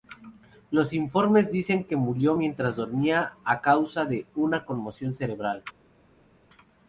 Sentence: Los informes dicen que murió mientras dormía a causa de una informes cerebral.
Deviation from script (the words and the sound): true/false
true